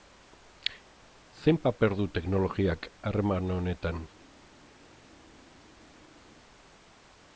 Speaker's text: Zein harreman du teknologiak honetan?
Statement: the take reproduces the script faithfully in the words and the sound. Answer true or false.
false